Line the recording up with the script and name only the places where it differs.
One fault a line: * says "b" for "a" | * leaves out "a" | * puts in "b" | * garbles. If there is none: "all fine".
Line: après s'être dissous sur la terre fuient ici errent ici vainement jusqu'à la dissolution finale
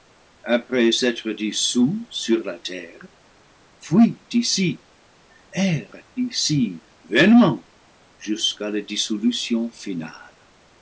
all fine